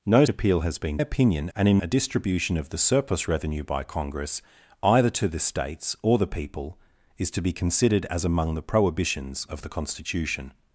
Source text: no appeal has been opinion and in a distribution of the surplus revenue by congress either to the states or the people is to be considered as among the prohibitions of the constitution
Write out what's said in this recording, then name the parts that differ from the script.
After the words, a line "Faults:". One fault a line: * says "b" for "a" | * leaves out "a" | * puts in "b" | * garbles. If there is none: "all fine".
no appeal has been opinion and in a distribution of the surplus revenue by congress either to the states or the people is to be considered as among the prohibitions of the constitution
Faults:
all fine